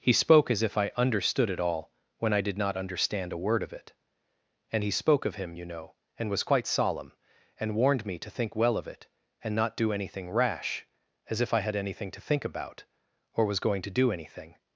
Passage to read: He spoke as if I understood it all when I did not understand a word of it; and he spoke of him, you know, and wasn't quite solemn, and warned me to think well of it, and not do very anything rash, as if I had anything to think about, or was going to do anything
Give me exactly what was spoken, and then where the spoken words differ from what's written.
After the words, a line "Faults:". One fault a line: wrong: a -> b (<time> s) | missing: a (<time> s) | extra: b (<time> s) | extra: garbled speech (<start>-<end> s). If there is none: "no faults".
He spoke as if I understood it all when I did not understand a word of it; and he spoke of him, you know, and was quite solemn, and warned me to think well of it, and not do anything rash, as if I had anything to think about, or was going to do anything
Faults:
wrong: wasn't -> was (6.3 s)
missing: very (9.9 s)